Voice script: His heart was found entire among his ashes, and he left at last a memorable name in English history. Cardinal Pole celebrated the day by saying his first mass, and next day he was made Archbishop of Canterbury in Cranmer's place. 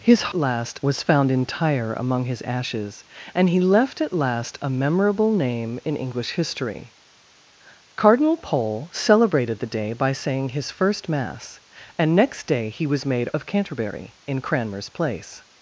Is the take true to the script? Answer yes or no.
no